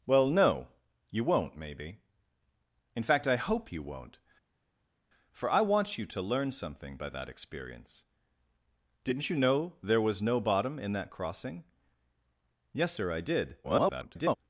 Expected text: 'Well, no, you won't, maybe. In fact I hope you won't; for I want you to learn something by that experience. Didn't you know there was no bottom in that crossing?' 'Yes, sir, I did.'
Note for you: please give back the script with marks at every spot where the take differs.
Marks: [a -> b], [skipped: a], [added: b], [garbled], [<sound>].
'Well, no, you won't, maybe. In fact I hope you won't; for I want you to learn something by that experience. Didn't you know there was no bottom in that crossing?' 'Yes, sir, I did.' [garbled]